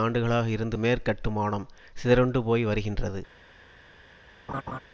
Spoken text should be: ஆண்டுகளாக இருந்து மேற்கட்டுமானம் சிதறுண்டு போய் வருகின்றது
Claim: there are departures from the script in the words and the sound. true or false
true